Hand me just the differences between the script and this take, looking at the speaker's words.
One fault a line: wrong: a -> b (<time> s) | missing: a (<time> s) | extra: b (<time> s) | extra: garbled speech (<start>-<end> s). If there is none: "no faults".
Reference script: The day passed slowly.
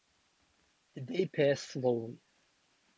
no faults